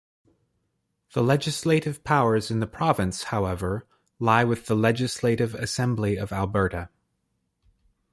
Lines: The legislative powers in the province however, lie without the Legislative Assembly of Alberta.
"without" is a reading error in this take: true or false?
true